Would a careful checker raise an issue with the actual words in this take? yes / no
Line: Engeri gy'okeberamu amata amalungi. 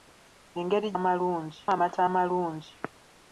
yes